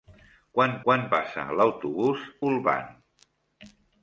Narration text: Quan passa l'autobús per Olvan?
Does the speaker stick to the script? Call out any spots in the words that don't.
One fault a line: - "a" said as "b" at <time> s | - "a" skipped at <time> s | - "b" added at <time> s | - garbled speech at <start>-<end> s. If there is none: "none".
- "quan" added at 0.9 s
- "per" skipped at 2.3 s